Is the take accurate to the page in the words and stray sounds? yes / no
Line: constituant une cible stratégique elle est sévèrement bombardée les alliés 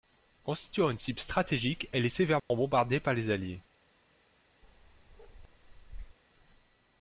no